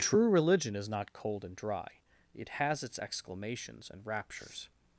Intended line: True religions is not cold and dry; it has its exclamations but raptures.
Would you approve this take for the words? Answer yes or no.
no